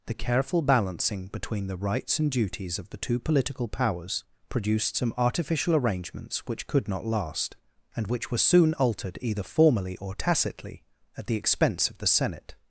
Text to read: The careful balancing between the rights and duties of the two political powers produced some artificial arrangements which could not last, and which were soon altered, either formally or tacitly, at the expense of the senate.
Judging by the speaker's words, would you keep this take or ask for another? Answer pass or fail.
pass